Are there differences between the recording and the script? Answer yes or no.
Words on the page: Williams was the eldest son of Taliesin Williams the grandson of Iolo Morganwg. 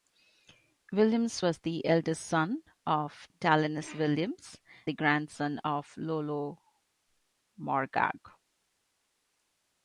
no